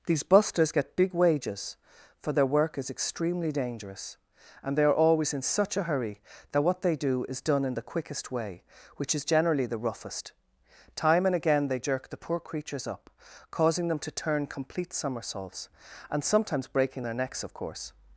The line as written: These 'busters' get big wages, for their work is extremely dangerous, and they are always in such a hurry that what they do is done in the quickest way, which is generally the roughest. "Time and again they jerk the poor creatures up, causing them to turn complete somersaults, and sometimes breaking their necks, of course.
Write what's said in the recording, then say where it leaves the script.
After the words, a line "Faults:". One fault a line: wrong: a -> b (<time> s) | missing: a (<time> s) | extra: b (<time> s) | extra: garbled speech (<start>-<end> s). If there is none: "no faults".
These 'busters' get big wages, for their work is extremely dangerous, and they are always in such a hurry that what they do is done in the quickest way, which is generally the roughest. "Time and again they jerk the poor creatures up, causing them to turn complete somersaults, and sometimes breaking their necks, of course.
Faults:
no faults